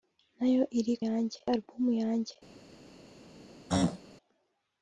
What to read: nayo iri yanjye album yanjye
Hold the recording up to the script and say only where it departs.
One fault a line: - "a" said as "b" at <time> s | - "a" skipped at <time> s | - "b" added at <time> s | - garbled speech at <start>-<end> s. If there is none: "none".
none